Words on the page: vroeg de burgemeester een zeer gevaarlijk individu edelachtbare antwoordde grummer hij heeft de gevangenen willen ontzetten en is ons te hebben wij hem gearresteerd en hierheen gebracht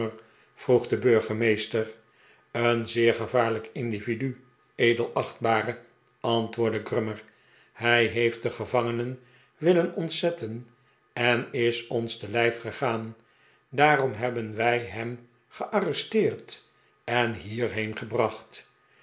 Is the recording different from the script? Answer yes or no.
yes